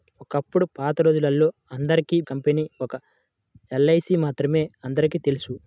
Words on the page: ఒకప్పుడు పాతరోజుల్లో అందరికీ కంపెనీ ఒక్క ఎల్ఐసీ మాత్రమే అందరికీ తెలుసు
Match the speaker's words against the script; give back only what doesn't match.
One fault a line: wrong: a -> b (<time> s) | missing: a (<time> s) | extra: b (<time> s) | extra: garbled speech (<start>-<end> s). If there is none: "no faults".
no faults